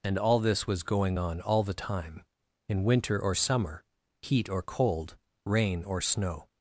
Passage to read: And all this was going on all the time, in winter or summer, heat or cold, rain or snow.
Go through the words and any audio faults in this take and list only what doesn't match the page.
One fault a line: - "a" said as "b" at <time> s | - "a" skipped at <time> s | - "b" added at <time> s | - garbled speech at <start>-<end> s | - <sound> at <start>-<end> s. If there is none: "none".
none